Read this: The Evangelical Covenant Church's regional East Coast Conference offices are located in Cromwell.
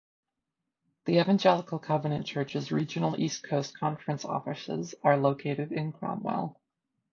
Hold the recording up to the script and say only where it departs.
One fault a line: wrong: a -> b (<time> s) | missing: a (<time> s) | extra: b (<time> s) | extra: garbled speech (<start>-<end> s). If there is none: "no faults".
no faults